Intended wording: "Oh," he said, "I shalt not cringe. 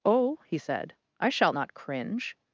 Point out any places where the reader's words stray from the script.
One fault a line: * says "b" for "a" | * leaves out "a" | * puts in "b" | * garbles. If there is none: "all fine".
all fine